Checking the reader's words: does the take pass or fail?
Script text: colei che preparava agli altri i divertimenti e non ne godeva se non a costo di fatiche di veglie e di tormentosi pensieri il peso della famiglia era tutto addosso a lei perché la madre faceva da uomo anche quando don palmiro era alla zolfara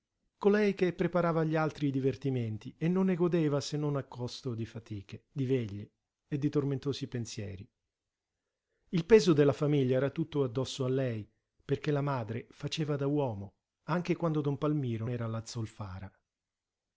pass